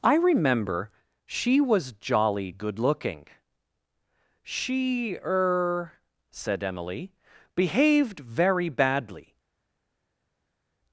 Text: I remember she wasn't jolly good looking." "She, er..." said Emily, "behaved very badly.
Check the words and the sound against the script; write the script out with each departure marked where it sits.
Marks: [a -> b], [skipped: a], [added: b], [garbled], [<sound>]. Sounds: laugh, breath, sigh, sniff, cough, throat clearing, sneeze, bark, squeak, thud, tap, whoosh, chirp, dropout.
I remember she [wasn't -> was] jolly good looking." "She, er..." said Emily, "behaved very badly.